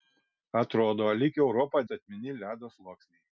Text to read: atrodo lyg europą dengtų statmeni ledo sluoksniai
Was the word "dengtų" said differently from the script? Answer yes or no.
yes